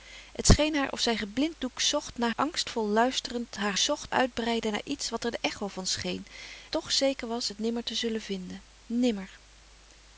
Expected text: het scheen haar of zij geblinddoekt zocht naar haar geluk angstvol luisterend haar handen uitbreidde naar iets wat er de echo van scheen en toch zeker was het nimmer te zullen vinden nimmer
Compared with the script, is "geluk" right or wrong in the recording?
wrong